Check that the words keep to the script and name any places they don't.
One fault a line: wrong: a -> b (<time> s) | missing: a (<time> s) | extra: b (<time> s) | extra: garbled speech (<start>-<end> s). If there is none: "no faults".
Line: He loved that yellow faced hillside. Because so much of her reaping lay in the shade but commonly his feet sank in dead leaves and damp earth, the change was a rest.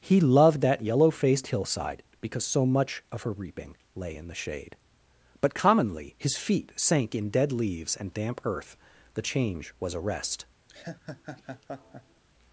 no faults